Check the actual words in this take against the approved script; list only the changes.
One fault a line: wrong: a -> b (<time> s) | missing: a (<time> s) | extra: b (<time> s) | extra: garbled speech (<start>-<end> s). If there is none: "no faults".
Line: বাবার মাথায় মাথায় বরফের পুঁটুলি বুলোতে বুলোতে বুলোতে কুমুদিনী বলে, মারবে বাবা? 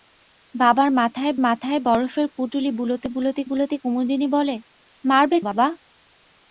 no faults